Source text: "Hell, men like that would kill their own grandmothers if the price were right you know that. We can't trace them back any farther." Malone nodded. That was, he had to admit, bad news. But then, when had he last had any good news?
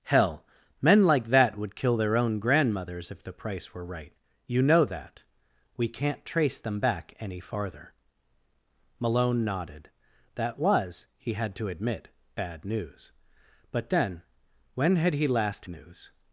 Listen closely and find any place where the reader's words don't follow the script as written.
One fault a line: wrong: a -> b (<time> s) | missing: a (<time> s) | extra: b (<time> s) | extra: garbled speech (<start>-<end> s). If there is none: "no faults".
missing: had any good (15.7 s)